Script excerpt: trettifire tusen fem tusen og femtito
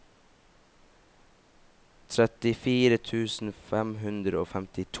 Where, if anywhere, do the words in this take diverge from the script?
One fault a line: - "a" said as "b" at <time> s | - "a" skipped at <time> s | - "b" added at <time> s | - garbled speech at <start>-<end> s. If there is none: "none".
- "tusen" said as "hundre" at 4.0 s